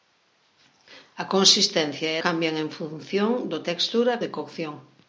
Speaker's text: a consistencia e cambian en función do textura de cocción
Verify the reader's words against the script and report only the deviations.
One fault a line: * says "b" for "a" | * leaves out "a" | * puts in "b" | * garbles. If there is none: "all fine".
all fine